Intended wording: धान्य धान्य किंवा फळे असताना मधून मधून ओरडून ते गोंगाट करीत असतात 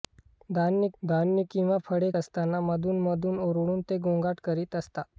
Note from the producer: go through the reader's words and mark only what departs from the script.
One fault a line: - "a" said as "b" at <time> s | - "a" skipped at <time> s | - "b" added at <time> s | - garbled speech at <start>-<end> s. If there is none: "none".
none